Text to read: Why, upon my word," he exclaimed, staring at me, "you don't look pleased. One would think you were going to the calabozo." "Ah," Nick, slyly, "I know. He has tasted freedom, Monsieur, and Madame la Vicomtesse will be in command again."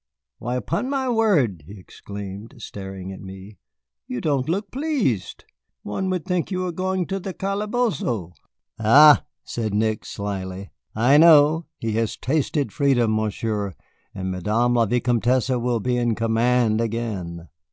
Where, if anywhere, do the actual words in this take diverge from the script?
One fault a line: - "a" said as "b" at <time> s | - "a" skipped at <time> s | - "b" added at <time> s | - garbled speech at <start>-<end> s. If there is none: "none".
- "said" added at 9.4 s